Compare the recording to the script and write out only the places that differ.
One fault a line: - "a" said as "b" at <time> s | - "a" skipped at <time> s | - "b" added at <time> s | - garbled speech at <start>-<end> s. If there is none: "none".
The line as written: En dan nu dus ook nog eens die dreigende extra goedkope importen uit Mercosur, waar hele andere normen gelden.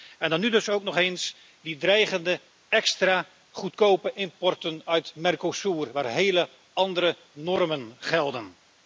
none